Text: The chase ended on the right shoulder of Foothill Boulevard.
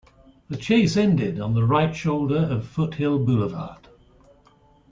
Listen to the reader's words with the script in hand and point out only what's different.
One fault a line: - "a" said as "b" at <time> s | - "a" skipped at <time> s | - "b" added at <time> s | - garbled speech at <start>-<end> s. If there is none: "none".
none